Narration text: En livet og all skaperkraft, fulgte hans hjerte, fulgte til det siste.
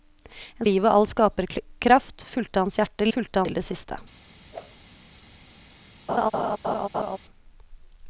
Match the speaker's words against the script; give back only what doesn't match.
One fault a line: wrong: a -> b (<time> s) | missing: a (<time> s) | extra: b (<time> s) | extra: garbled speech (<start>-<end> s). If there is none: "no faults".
no faults